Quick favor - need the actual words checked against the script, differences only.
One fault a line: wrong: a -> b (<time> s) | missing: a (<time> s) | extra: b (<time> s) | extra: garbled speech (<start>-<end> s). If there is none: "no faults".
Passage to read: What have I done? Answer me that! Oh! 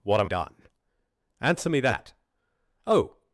missing: I (0.3 s)